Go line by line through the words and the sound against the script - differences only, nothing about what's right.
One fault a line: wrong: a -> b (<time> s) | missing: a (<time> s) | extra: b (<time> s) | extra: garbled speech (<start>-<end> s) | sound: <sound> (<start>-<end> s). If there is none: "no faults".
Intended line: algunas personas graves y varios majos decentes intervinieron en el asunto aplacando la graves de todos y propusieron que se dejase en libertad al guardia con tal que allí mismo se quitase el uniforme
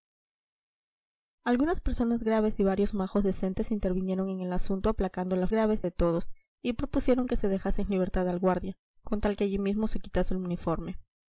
no faults